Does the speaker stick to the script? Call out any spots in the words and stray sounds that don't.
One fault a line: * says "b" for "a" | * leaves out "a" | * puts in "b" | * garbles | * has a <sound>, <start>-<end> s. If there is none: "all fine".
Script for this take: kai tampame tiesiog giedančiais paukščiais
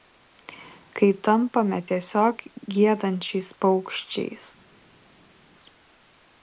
all fine